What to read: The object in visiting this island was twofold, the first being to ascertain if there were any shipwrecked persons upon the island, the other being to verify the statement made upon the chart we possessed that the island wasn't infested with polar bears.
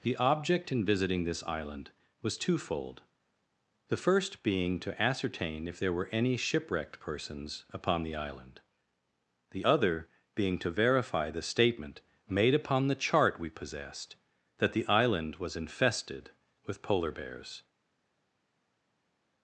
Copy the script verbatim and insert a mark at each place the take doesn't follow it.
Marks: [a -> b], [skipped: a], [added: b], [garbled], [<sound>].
The object in visiting this island was twofold, the first being to ascertain if there were any shipwrecked persons upon the island, the other being to verify the statement made upon the chart we possessed that the island [wasn't -> was] infested with polar bears.